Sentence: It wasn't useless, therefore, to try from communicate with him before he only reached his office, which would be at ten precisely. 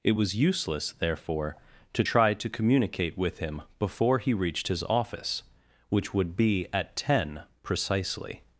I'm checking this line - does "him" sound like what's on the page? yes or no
yes